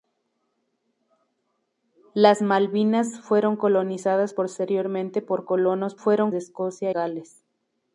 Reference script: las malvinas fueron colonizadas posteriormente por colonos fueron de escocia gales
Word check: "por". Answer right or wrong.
right